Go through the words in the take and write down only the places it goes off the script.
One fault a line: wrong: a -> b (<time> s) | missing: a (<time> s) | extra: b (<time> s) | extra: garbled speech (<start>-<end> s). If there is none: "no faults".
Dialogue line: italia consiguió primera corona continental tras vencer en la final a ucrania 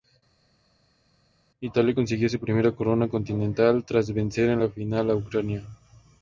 extra: su (2.3 s)